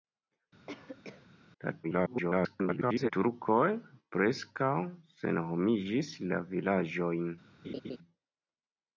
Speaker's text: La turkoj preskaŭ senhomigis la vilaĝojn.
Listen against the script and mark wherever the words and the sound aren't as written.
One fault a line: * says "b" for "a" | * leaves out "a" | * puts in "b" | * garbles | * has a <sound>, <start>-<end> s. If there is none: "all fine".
* has a cough, 0.7-1.3 s
* garbles
* has a laugh, 7.6-8.0 s